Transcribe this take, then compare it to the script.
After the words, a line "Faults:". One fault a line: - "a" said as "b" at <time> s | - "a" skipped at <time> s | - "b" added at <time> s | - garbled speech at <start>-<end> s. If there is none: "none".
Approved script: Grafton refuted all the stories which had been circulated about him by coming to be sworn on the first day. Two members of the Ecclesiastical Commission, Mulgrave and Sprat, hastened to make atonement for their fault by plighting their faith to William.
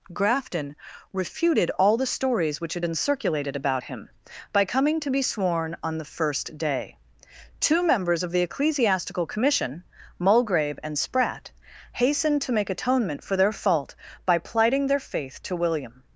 Grafton refuted all the stories which had been circulated about him by coming to be sworn on the first day. Two members of the Ecclesiastical Commission, Mulgrave and Sprat, hastened to make atonement for their fault by plighting their faith to William.
Faults:
none